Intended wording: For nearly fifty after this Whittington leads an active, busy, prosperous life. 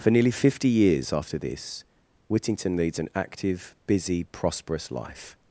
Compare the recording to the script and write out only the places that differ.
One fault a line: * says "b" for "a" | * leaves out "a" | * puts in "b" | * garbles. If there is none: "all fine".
* puts in "years"